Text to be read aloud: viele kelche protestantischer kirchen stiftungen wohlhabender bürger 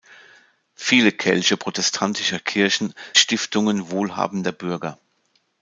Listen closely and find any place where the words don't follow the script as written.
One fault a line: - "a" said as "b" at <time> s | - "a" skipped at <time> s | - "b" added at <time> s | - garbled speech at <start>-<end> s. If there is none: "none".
none